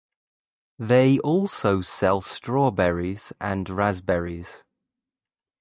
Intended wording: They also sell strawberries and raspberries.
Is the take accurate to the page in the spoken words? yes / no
yes